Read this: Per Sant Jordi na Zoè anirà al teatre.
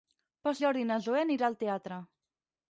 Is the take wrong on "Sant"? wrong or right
wrong